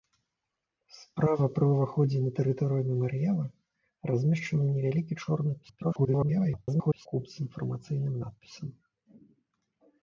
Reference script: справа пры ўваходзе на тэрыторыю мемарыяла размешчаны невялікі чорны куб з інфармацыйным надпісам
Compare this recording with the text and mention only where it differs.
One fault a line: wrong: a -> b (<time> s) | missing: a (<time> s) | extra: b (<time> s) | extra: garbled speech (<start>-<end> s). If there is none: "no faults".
extra: garbled speech (5.6-7.1 s)